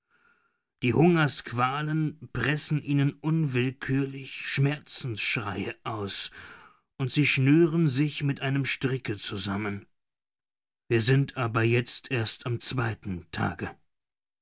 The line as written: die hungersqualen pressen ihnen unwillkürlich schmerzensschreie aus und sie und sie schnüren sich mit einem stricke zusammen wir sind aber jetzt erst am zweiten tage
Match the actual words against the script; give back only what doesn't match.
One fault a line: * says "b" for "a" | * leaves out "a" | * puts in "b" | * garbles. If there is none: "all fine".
* leaves out "und sie"